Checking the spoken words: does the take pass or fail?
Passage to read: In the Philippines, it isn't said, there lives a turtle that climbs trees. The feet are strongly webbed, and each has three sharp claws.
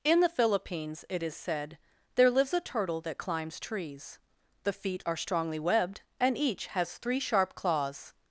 fail